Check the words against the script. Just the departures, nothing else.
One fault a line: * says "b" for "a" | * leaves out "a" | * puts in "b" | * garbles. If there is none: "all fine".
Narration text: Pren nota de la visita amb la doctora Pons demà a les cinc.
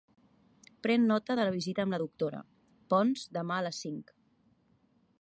all fine